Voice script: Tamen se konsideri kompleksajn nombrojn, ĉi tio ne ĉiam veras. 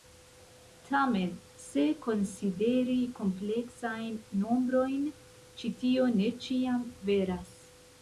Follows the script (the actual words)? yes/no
yes